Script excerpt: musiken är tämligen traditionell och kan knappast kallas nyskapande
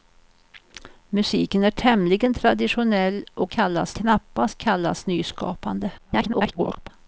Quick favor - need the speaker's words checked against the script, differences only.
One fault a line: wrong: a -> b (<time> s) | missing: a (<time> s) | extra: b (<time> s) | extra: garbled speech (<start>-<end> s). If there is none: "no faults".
wrong: kan -> kallas (3.5 s)
extra: garbled speech (6.0-6.9 s)